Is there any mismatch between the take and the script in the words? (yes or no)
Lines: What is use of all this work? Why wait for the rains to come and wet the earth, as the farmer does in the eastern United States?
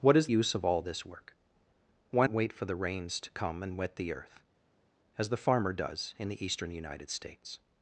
no